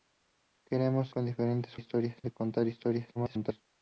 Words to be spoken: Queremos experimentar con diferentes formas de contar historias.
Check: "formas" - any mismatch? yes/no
yes